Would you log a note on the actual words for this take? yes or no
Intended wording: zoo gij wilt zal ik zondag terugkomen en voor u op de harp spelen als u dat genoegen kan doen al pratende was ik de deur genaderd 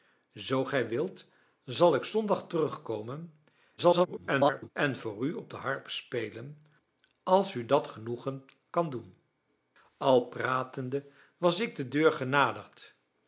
yes